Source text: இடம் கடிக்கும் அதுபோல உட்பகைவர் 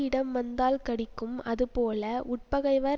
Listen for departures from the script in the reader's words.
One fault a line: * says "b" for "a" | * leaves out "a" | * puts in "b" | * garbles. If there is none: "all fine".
* puts in "வந்தால்"